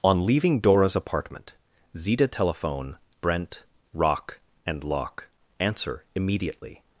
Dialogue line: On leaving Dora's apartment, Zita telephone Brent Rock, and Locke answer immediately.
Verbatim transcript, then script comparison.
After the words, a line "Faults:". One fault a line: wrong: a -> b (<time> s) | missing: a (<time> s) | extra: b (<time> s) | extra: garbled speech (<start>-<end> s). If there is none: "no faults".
On leaving Dora's apartment, Zita telephone Brent Rock, and Locke answer immediately.
Faults:
no faults